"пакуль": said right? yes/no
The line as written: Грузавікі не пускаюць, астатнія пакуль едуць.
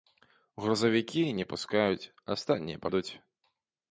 no